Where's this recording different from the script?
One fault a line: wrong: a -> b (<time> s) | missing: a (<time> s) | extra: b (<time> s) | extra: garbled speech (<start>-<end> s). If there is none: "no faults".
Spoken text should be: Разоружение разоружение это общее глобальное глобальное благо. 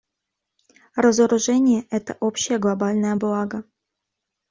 missing: разоружение (1.9 s)
missing: глобальное (3.1 s)